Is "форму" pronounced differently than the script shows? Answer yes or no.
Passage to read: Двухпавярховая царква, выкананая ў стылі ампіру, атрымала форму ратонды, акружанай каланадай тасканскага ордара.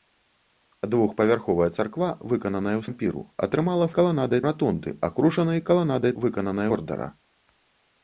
yes